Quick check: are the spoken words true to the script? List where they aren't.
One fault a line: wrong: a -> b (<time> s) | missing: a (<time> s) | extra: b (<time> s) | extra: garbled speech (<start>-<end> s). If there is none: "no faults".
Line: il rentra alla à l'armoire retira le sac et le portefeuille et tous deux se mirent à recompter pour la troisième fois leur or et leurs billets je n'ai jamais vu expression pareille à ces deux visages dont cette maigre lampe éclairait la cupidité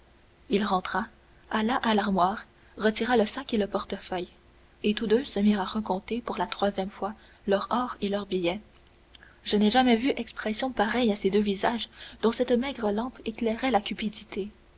no faults